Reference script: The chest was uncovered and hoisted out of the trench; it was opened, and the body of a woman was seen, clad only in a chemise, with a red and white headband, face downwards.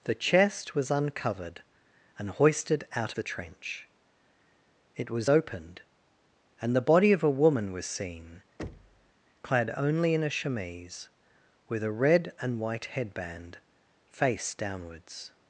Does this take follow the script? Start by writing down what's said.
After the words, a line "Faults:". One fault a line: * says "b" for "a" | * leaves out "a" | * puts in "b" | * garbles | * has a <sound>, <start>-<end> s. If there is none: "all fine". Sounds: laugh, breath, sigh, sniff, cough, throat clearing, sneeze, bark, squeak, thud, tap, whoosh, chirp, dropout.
The chest was uncovered and hoisted out the trench; it was opened, and the body of a woman was seen, clad only in a chemise, with a red and white headband, face downwards.
Faults:
* leaves out "of"
* has a thud, 8.6-9.1 s